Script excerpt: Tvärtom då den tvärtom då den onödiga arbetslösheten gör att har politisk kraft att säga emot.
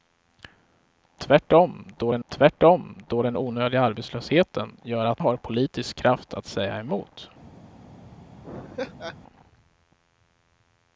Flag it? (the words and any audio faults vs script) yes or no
yes